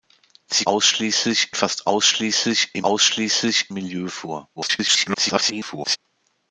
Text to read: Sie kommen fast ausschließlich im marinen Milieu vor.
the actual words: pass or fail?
fail